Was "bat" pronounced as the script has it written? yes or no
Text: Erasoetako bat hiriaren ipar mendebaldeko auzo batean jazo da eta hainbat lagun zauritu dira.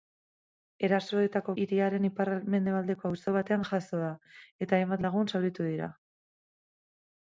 no